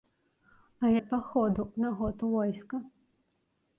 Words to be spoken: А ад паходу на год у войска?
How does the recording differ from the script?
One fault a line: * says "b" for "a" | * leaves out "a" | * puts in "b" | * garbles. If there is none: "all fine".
all fine